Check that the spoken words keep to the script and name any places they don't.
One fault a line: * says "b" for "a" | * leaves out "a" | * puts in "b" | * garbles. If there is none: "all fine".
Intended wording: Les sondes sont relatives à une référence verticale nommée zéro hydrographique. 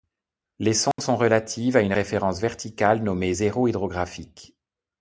all fine